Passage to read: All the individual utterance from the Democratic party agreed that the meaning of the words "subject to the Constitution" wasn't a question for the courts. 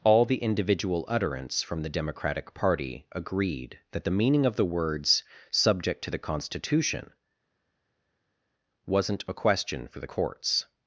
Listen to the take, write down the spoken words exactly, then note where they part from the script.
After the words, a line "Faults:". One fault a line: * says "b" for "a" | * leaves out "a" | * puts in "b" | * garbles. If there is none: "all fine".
All the individual utterance from the Democratic party agreed that the meaning of the words "subject to the Constitution" wasn't a question for the courts.
Faults:
all fine